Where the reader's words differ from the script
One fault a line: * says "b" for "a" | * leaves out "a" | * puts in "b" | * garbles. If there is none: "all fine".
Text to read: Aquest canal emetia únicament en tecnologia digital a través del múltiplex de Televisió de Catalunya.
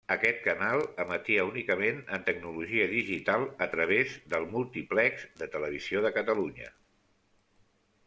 all fine